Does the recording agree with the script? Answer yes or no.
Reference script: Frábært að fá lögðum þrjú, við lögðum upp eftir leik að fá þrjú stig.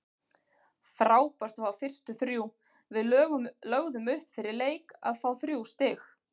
no